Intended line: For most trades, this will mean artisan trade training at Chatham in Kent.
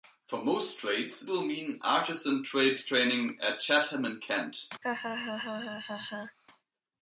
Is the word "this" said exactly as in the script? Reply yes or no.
no